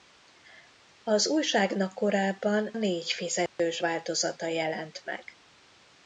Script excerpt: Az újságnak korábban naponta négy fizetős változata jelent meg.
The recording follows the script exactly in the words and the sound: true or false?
false